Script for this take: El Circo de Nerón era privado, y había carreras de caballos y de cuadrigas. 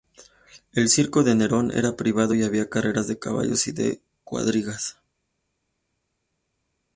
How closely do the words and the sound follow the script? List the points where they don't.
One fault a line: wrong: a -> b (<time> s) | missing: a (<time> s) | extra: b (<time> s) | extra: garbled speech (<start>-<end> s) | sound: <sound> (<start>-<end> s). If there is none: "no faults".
no faults